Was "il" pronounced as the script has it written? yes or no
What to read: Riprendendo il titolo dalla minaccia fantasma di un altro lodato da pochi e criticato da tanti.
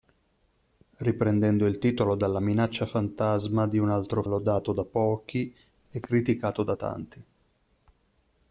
yes